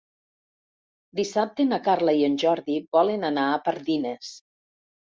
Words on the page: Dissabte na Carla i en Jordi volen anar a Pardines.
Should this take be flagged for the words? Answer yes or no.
no